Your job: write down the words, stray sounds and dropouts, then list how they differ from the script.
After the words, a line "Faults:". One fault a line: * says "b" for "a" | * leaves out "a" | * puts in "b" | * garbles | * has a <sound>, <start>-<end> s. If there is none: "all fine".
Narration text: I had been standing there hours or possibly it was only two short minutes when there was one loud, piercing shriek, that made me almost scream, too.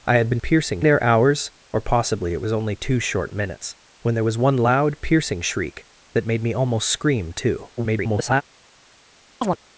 I had been piercing there hours or possibly it was only two short minutes when there was one loud, piercing shriek, that made me almost scream, too. [garbled]
Faults:
* says "piercing" for "standing"
* garbles
* has a chirp, 9.4-9.6 s